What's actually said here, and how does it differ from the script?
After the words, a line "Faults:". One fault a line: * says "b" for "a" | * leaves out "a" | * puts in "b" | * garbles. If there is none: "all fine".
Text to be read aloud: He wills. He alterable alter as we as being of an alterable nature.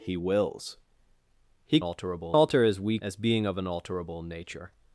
He wills. He alterable alter as we as being of an alterable nature.
Faults:
all fine